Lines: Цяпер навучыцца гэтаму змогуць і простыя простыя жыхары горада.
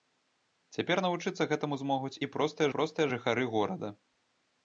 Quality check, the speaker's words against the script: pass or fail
pass